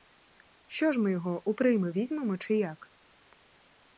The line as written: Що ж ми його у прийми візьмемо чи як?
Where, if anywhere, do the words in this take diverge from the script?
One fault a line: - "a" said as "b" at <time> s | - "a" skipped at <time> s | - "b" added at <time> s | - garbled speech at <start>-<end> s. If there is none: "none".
none